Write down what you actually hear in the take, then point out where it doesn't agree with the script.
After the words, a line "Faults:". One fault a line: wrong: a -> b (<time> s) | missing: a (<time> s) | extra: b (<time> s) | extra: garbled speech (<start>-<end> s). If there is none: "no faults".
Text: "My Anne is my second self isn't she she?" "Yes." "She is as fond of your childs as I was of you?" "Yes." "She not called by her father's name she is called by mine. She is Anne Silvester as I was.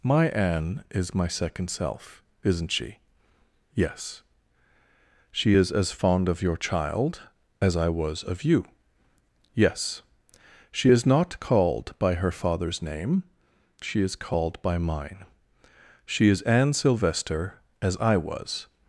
"My Anne is my second self isn't she?" "Yes." "She is as fond of your child as I was of you?" "Yes." "She is not called by her father's name she is called by mine. She is Anne Silvester as I was.
Faults:
missing: she (3.0 s)
wrong: childs -> child (6.6 s)
extra: is (10.9 s)